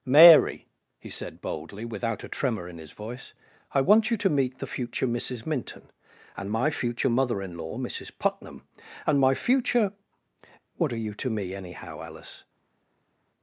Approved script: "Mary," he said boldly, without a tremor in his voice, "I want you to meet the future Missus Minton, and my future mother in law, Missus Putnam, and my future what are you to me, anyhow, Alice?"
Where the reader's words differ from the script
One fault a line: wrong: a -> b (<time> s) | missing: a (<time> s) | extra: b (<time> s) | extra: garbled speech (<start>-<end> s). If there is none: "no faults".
no faults